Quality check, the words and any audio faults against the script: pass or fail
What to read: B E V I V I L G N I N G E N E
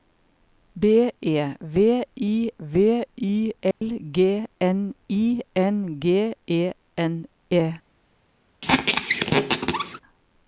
fail